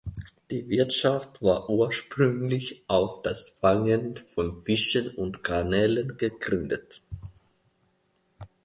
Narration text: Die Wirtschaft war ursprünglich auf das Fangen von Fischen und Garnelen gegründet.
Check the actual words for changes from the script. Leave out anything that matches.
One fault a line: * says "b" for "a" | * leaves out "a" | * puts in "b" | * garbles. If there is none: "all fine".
all fine